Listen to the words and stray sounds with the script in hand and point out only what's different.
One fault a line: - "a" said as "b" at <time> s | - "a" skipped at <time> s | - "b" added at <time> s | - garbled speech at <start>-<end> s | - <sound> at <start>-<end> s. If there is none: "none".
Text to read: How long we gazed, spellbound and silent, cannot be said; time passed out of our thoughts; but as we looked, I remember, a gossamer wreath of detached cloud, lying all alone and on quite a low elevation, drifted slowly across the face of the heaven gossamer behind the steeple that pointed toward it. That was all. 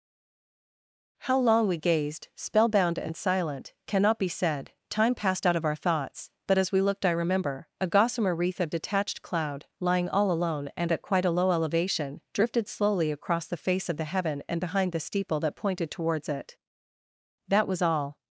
- "on" said as "at" at 10.9 s
- "gossamer" said as "and" at 14.5 s
- "toward" said as "towards" at 15.9 s